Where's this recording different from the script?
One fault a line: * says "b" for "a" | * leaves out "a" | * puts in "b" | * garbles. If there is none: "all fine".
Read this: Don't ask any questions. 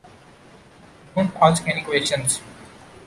all fine